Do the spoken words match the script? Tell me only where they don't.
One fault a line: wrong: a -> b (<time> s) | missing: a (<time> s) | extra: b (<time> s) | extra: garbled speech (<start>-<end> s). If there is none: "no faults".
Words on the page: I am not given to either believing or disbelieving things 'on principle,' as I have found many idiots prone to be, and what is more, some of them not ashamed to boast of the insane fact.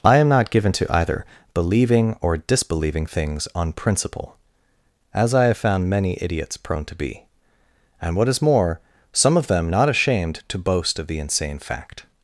no faults